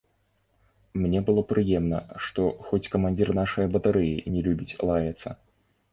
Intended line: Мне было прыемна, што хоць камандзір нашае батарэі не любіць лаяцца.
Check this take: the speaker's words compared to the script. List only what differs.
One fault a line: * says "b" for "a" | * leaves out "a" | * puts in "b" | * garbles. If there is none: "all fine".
all fine